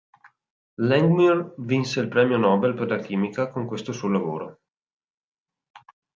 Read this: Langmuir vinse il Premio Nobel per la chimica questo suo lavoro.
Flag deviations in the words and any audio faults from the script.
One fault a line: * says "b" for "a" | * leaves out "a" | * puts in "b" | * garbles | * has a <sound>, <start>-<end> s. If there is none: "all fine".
* puts in "con"